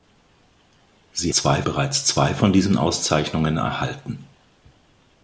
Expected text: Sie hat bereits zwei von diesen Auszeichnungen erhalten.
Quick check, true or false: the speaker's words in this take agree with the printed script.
false